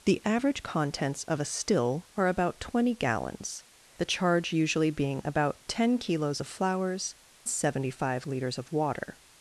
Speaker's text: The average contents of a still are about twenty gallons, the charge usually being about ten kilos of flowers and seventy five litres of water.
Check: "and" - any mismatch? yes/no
yes